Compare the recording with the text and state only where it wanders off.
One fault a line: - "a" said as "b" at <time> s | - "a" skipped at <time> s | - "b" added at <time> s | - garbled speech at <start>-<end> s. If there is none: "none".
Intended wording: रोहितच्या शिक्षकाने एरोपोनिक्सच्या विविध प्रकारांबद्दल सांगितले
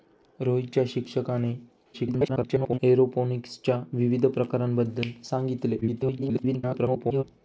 - garbled speech at 1.9-2.8 s
- garbled speech at 5.8-7.2 s